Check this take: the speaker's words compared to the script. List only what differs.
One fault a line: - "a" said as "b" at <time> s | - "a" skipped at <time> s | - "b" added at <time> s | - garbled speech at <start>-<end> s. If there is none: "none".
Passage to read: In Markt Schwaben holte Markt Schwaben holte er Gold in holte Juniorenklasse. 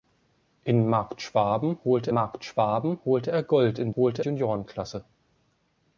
none